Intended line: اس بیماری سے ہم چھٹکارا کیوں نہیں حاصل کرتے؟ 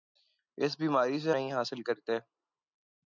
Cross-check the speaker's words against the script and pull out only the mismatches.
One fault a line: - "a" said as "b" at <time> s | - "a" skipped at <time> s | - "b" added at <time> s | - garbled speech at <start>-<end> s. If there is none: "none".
- "ہم چھٹکارا کیوں" skipped at 1.3 s